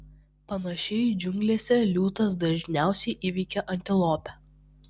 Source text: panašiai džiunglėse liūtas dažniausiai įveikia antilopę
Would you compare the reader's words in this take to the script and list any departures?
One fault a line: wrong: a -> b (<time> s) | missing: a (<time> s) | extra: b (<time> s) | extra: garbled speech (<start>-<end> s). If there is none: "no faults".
no faults